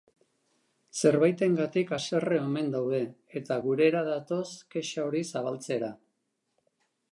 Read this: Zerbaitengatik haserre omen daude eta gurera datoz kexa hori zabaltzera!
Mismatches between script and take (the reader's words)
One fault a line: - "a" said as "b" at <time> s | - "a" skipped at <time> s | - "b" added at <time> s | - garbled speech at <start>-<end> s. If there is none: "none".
none